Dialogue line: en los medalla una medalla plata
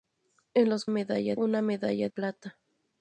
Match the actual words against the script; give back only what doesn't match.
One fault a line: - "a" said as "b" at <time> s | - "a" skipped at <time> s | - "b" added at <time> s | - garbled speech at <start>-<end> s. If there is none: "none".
none